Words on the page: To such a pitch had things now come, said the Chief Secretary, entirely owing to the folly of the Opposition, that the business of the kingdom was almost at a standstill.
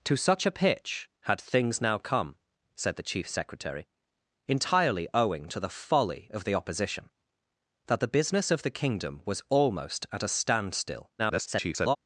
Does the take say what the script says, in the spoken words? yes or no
no